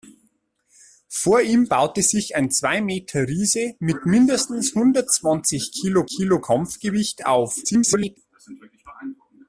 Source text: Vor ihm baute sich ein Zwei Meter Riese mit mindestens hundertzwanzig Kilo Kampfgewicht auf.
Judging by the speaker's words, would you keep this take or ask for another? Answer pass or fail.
fail